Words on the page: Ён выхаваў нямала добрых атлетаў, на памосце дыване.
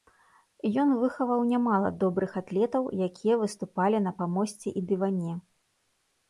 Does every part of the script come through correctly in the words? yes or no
no